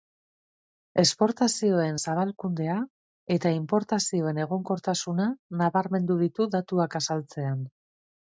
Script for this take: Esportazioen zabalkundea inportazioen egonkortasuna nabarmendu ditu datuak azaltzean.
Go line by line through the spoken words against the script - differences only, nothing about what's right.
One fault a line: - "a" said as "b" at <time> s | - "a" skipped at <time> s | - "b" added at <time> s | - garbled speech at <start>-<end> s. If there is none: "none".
- "eta" added at 3.4 s